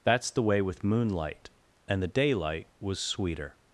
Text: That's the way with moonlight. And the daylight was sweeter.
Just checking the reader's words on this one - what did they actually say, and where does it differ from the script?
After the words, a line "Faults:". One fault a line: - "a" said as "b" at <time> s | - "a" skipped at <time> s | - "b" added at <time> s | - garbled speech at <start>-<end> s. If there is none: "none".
That's the way with moonlight. And the daylight was sweeter.
Faults:
none